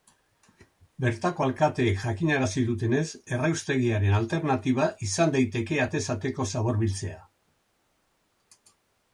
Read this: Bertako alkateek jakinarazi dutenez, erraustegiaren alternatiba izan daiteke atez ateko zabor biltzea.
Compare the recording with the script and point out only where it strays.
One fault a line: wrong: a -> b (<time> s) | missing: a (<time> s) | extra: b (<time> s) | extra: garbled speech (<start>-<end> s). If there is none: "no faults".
no faults